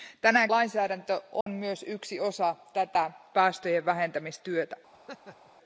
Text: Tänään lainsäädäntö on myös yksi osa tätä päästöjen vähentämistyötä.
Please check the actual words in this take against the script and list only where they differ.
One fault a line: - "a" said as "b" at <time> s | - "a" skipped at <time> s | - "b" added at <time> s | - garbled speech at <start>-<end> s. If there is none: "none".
none